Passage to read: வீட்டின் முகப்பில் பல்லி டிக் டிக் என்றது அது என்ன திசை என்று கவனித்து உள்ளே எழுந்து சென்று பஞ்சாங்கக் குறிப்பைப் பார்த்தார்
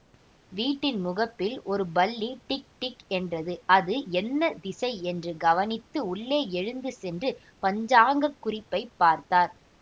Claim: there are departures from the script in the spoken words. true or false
true